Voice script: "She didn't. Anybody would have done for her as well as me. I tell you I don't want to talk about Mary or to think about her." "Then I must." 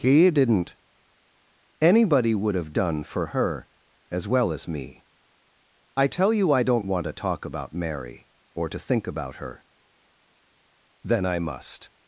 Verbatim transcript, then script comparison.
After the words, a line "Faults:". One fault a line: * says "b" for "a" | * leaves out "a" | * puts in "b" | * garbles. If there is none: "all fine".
"He didn't. Anybody would have done for her as well as me. I tell you I don't want to talk about Mary or to think about her." "Then I must."
Faults:
* says "He" for "She"